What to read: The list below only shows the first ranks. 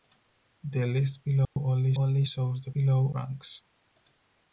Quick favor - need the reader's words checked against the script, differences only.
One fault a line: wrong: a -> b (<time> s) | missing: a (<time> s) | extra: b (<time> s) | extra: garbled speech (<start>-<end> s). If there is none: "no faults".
extra: only (1.9 s)
wrong: first -> below (2.7 s)